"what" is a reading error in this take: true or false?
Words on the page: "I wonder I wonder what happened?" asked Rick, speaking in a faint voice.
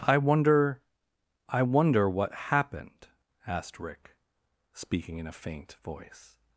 false